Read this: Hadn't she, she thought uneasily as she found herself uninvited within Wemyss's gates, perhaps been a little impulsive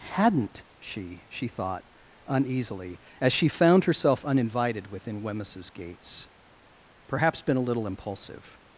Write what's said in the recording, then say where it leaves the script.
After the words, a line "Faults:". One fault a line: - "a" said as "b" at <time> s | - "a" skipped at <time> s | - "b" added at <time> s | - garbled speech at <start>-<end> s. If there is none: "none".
Hadn't she, she thought uneasily as she found herself uninvited within Wemyss's gates, perhaps been a little impulsive
Faults:
none